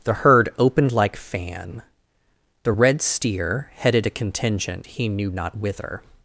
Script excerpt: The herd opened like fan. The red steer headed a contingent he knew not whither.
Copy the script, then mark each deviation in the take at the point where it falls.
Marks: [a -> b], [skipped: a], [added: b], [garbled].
The herd opened like fan. The red steer headed a contingent he knew not whither.